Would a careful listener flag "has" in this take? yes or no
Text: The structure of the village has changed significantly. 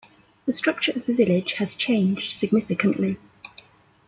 no